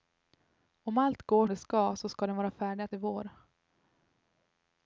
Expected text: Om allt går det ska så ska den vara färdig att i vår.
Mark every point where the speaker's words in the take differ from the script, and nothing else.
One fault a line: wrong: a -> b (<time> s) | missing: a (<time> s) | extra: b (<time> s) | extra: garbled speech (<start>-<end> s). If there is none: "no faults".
no faults